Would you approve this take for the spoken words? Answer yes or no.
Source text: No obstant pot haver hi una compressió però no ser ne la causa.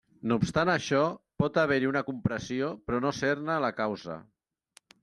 no